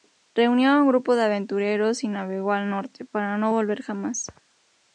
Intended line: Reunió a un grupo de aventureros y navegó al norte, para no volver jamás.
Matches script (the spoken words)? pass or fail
pass